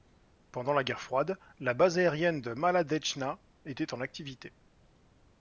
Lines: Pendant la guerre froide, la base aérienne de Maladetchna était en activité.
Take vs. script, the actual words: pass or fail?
pass